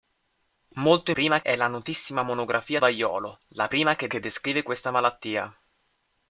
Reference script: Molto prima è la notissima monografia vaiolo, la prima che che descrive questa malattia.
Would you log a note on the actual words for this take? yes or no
no